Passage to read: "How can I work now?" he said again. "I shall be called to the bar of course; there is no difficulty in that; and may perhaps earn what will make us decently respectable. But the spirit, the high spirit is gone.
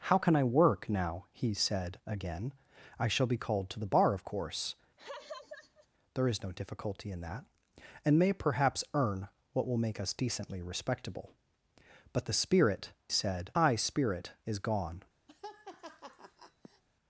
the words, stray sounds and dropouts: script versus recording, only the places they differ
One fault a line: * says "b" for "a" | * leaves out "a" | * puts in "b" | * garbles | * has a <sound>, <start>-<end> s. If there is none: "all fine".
* has a laugh, 5.0-5.9 s
* says "said" for "the"
* has a laugh, 15.3-16.8 s